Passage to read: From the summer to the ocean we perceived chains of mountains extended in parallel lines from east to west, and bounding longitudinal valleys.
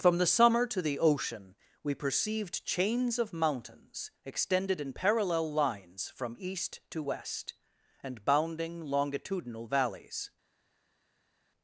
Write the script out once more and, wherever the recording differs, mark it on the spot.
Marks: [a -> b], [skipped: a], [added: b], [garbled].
From the summer to the ocean we perceived chains of mountains extended in parallel lines from east to west, and bounding longitudinal valleys.